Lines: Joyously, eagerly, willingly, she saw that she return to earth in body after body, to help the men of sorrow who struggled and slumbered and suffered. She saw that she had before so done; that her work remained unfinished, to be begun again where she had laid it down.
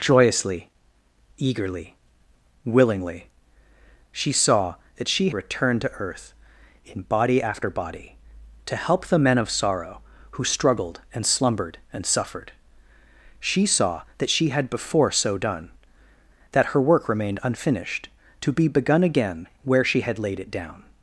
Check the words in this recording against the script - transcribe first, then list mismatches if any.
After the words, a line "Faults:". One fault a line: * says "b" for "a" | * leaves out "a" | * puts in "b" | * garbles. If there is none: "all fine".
Joyously, eagerly, willingly, she saw that she return to earth in body after body, to help the men of sorrow who struggled and slumbered and suffered. She saw that she had before so done; that her work remained unfinished, to be begun again where she had laid it down.
Faults:
all fine